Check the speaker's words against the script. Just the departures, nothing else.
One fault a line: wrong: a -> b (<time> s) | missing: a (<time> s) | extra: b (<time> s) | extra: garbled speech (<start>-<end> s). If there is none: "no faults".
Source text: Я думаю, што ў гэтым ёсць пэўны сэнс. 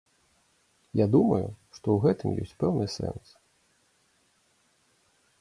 no faults